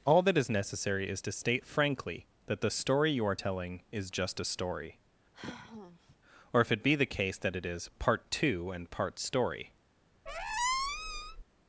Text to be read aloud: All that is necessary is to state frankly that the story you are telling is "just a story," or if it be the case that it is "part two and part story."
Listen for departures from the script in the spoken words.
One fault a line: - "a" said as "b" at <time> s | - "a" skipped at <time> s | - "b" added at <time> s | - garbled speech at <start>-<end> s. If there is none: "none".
none